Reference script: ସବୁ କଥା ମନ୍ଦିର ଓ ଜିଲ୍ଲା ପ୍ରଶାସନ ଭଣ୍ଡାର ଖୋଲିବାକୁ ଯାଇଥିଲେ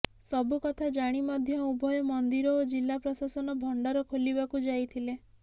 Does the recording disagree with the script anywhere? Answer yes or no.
yes